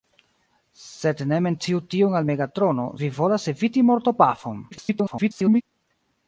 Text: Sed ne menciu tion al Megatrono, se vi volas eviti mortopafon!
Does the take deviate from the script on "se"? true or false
true